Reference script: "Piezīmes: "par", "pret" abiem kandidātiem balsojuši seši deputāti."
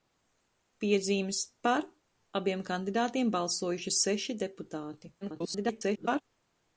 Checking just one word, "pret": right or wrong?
wrong